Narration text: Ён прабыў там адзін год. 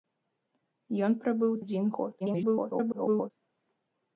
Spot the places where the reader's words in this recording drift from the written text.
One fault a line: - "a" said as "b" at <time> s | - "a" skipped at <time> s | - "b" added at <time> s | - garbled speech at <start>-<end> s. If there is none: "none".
- "там" skipped at 1.5 s
- garbled speech at 2.2-3.3 s